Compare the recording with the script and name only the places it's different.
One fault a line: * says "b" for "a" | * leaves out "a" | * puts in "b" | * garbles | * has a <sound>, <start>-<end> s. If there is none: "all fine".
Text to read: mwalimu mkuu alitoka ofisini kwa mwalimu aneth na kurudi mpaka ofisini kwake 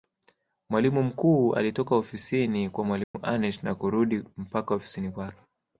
* has a dropout, 3.0-3.1 s